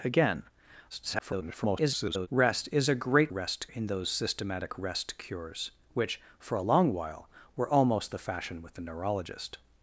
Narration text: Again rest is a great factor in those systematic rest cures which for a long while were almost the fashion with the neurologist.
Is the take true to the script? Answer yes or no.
no